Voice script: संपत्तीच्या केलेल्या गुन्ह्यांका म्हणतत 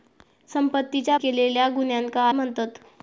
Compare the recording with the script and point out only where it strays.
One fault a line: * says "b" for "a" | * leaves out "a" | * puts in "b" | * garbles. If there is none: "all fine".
all fine